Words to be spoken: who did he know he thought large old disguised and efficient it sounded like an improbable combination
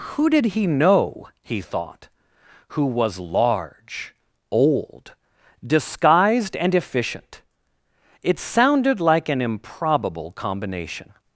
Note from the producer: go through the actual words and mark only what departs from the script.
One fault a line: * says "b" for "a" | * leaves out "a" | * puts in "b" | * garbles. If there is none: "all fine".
* puts in "who was"